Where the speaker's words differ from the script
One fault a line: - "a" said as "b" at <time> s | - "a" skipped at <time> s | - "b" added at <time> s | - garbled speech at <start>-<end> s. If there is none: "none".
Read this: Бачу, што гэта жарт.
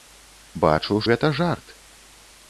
- "што" skipped at 1.0 s